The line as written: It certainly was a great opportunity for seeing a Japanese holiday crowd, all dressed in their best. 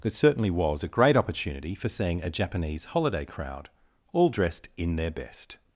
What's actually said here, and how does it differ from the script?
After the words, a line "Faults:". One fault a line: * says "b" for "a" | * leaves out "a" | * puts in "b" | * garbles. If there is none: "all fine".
It certainly was a great opportunity for seeing a Japanese holiday crowd, all dressed in their best.
Faults:
all fine